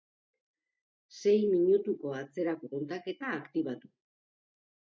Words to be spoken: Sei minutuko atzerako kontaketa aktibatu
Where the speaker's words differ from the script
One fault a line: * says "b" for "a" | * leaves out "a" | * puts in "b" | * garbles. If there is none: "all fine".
all fine